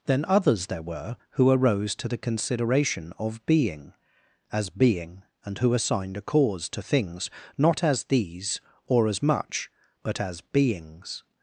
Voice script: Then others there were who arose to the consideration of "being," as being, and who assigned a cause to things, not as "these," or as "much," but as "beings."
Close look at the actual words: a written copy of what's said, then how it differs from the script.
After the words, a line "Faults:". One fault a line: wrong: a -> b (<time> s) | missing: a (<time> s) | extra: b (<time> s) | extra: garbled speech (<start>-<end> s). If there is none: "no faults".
Then others there were who arose to the consideration of "being," as being, and who assigned a cause to things, not as "these," or as "much," but as "beings."
Faults:
no faults